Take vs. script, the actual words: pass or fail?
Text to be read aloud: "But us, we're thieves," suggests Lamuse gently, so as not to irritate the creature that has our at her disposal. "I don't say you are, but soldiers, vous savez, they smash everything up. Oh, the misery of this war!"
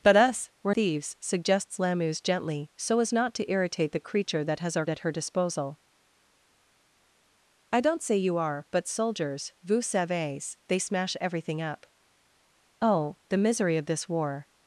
pass